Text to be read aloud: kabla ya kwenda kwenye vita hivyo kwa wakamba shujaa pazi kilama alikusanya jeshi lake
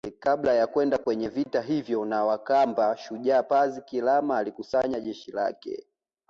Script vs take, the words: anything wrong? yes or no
yes